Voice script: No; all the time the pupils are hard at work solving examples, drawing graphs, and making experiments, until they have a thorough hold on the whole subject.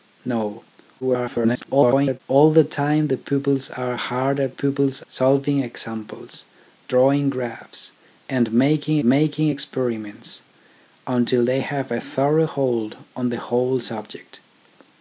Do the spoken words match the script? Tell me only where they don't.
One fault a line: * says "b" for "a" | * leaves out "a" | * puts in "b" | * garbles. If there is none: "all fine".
* garbles
* says "pupils" for "work"
* puts in "making"